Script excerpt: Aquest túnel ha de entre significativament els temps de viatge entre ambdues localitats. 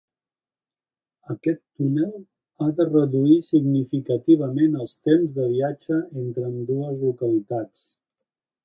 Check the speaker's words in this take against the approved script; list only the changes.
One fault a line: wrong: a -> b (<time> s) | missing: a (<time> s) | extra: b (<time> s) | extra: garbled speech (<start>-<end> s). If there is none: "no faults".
wrong: entre -> reduir (2.9 s)